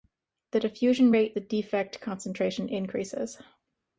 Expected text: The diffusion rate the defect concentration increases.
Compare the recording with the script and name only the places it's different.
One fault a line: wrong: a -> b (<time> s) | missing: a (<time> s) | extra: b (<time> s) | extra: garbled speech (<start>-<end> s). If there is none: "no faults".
no faults